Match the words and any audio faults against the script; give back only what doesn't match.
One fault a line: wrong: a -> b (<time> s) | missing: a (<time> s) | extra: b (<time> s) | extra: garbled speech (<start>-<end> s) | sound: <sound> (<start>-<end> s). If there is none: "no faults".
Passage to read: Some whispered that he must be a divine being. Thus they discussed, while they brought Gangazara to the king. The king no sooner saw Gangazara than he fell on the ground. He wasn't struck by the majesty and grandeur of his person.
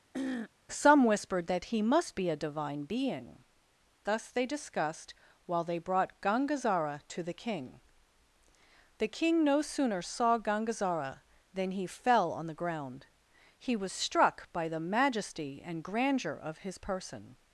sound: throat clearing (0.1-0.5 s)
wrong: wasn't -> was (13.7 s)